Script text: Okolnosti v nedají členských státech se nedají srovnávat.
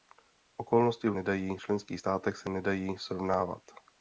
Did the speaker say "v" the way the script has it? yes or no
yes